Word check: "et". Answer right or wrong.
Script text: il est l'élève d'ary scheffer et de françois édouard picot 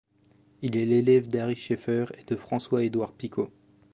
right